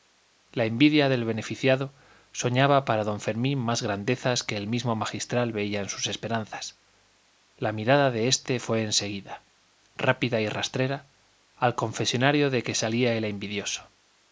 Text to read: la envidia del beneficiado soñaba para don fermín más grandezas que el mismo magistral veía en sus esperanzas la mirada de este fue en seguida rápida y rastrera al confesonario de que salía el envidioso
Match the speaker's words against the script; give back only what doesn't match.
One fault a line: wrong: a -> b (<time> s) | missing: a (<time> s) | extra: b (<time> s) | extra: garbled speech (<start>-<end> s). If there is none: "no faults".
no faults